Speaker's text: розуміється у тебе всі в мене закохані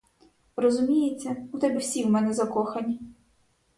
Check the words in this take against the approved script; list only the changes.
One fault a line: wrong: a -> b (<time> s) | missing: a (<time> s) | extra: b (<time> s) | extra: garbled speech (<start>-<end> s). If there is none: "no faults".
no faults